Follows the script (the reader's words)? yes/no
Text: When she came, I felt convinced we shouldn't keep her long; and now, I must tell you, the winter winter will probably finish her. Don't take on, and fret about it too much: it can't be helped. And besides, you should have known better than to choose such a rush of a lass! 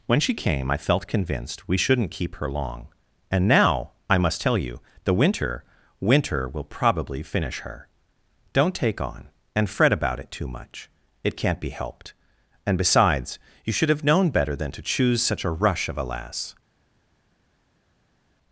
yes